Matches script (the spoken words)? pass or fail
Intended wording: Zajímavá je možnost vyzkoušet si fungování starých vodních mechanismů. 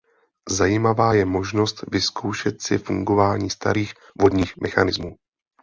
pass